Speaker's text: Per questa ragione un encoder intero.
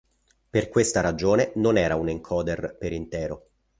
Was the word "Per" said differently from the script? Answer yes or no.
no